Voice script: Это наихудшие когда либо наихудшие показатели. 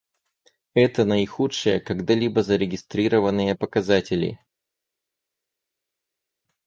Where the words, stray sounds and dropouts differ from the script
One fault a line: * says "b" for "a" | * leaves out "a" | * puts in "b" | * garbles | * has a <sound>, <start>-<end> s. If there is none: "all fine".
* says "зарегистрированные" for "наихудшие"